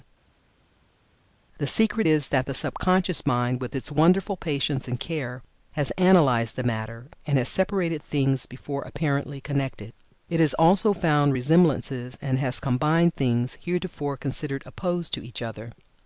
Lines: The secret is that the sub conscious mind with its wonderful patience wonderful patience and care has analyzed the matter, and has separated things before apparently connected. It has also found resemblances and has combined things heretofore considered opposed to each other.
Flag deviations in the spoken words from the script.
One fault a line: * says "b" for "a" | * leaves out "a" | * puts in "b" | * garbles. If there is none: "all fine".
* leaves out "wonderful patience"